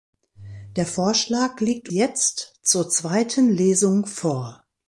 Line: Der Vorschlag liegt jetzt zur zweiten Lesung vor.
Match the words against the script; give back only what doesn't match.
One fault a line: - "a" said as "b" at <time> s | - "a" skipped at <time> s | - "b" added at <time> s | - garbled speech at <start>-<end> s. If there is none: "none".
none